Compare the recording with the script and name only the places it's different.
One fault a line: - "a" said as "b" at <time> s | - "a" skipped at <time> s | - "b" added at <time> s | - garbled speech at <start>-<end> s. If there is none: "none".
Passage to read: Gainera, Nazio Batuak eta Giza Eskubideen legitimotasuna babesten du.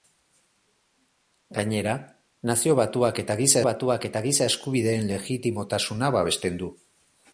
- "Batuak eta Giza" added at 3.7 s